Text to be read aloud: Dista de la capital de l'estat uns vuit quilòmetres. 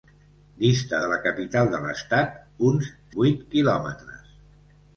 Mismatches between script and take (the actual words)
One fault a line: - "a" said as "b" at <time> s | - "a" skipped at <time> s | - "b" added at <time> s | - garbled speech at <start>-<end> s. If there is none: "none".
none